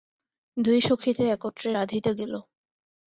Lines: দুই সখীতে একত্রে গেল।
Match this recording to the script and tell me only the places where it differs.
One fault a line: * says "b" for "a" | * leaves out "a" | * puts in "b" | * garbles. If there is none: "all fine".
* puts in "রাঁধিতে"